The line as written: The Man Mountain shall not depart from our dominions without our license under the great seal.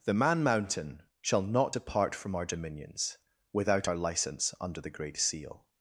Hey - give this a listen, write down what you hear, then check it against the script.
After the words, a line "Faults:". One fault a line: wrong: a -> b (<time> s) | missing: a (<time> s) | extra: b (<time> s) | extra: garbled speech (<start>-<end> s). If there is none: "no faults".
The Man Mountain shall not depart from our dominions without our license under the great seal.
Faults:
no faults